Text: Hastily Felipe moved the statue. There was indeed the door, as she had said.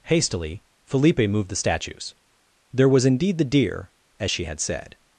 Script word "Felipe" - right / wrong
right